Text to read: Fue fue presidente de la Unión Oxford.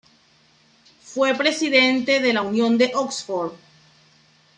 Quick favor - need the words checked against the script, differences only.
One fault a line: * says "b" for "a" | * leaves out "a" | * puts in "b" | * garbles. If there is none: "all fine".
* leaves out "fue"
* puts in "de"